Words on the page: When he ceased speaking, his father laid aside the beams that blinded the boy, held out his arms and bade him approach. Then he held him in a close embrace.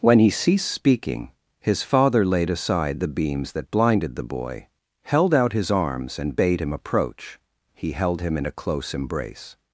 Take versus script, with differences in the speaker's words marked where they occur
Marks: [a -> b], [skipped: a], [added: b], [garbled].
When he ceased speaking, his father laid aside the beams that blinded the boy, held out his arms and bade him approach. [skipped: Then] he held him in a close embrace.